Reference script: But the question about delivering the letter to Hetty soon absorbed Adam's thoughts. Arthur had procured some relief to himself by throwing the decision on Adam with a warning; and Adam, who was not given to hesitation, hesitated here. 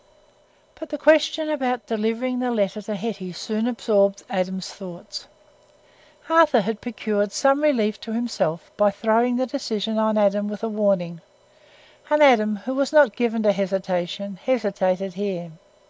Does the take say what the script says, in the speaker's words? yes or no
yes